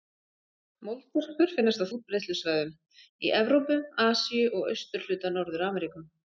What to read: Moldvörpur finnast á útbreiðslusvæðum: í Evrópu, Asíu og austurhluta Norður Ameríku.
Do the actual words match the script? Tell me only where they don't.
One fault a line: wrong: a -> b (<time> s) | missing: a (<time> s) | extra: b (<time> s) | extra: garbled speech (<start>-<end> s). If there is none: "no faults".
no faults